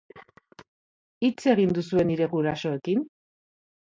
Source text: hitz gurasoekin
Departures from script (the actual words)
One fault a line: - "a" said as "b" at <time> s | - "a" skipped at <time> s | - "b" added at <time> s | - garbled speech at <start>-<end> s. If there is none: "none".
- "egin duzue nire" added at 1.5 s